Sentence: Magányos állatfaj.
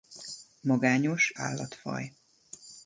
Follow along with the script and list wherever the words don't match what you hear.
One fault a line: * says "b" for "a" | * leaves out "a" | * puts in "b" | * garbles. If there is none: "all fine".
all fine